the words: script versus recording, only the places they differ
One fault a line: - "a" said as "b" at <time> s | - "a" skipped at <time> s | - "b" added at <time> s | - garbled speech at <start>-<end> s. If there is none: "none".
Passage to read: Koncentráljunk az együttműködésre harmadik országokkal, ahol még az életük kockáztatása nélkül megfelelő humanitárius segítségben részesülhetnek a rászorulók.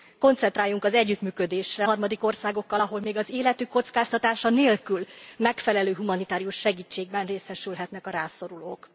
none